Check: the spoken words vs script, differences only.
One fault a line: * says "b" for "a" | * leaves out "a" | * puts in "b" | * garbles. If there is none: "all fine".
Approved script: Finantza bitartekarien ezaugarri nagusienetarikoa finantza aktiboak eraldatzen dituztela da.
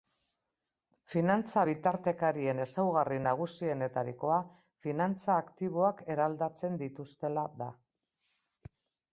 all fine